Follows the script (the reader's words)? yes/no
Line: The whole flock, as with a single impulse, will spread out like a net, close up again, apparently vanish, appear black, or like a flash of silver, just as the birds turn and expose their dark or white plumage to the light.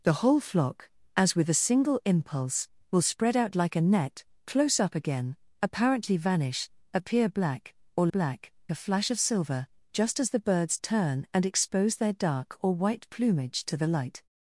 no